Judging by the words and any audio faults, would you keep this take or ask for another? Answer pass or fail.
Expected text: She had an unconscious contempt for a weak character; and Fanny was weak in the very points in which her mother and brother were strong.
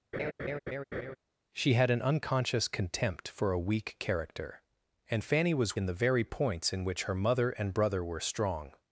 fail